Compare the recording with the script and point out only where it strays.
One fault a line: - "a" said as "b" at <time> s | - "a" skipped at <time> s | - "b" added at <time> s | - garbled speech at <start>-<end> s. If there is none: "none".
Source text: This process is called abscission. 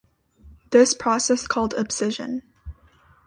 - "is" skipped at 1.5 s